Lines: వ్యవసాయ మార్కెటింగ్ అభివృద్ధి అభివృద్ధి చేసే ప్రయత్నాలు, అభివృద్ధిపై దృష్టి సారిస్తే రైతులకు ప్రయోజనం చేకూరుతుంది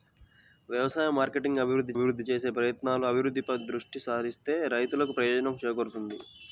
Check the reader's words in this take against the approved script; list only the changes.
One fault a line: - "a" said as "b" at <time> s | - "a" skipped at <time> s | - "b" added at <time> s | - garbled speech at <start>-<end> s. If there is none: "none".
none